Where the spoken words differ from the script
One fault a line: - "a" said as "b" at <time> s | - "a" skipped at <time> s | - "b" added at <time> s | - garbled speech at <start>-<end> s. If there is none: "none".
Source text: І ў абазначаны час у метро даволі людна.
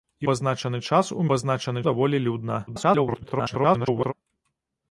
- "ў" skipped at 0.3 s
- "метро" said as "абазначаны" at 1.2 s
- garbled speech at 2.7-4.1 s